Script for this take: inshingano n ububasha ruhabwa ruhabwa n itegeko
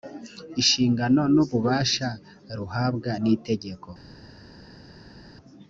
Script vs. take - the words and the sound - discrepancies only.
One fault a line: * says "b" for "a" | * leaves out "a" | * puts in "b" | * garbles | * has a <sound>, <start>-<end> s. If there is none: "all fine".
* leaves out "ruhabwa"